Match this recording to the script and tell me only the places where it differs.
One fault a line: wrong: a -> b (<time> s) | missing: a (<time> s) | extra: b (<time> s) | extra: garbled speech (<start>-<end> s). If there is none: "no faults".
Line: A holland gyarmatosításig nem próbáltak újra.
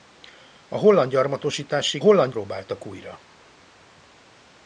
wrong: nem -> holland (2.0 s)